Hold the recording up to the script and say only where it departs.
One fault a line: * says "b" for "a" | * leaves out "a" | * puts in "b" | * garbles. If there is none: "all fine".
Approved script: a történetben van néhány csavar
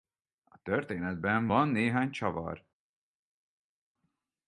all fine